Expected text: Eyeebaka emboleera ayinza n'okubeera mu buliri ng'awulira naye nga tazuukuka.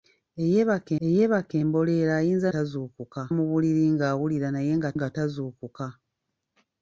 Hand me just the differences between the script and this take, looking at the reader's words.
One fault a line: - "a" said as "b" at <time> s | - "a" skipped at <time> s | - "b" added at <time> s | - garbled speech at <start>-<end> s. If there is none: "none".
- "eyeebaka" added at 1.1 s
- "n'okubeera" said as "tazuukuka" at 2.5 s
- "nga" added at 5.0 s